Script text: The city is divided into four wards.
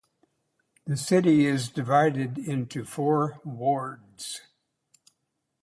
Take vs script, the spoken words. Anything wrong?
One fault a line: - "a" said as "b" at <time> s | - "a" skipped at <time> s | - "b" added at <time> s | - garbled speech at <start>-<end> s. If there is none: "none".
none